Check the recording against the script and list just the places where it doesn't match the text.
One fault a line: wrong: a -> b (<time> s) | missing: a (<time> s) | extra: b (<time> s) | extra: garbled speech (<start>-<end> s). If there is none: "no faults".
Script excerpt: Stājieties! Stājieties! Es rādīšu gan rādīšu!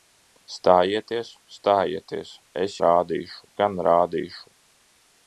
no faults